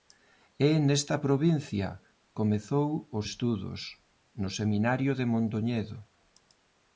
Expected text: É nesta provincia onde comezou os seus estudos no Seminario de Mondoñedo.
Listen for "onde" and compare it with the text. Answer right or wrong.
wrong